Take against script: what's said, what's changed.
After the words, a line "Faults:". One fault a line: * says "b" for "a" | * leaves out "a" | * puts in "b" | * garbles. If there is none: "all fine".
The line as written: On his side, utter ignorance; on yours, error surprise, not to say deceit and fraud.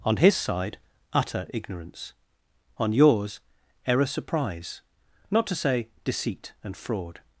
On his side, utter ignorance; on yours, error surprise, not to say deceit and fraud.
Faults:
all fine